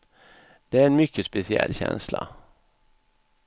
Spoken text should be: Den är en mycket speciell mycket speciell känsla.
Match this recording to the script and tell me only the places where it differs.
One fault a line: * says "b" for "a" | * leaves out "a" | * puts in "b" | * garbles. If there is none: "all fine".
* says "Det" for "Den"
* leaves out "mycket speciell"